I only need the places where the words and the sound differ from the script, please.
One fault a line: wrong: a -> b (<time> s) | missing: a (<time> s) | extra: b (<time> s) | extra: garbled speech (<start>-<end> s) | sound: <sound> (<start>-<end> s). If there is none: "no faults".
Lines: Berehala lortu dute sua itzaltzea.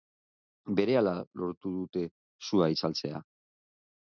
no faults